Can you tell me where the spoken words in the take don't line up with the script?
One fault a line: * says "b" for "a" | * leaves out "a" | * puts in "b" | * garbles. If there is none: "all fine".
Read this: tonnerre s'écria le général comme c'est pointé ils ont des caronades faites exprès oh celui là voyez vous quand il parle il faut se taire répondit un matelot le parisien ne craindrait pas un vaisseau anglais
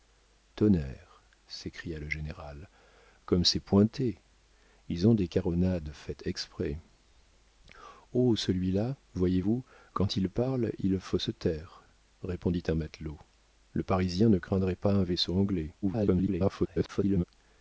* garbles